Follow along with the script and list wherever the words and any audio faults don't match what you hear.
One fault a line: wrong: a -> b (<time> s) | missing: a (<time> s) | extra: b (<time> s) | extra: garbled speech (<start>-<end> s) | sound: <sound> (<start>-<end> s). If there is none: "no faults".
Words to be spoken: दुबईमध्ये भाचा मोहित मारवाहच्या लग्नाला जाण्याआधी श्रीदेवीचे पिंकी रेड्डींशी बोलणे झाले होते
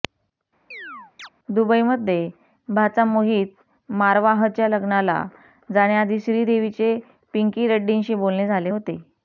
sound: chirp (0.7-1.3 s)